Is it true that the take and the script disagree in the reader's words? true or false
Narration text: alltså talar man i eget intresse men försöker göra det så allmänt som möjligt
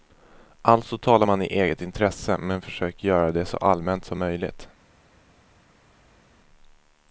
false